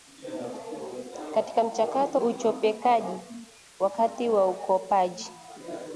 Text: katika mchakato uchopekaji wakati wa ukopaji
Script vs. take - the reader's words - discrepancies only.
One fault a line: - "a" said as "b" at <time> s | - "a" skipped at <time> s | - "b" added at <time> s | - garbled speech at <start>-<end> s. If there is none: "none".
none